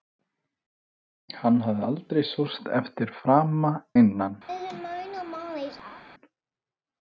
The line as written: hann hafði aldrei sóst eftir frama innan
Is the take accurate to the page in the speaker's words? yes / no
yes